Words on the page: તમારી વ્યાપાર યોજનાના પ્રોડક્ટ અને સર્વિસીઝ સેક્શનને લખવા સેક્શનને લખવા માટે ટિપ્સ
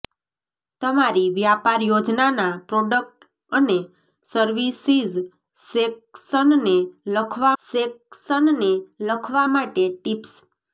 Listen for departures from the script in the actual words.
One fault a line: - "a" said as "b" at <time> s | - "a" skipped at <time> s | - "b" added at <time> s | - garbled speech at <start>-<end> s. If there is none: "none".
none